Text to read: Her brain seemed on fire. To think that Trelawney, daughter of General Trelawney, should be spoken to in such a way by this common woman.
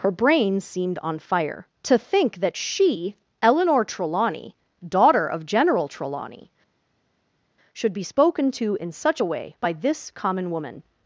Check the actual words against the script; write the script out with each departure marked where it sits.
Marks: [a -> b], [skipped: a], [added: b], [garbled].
Her brain seemed on fire. To think that [added: she Eleanor] Trelawney, daughter of General Trelawney, should be spoken to in such a way by this common woman.